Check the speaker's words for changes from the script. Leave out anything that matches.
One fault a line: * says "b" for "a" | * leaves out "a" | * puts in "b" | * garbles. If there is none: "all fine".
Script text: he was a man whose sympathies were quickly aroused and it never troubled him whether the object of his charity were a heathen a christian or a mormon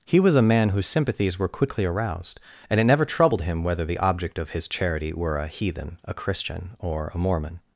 all fine